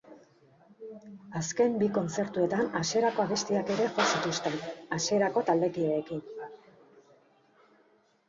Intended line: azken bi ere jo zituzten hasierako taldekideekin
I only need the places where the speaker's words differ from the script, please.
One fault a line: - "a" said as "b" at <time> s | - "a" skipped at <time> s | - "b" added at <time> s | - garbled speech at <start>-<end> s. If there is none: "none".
- "kontzertuetan hasierako abestiak" added at 2.0 s